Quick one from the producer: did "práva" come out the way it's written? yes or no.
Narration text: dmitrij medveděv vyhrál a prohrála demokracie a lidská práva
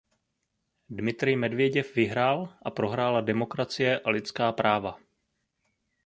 yes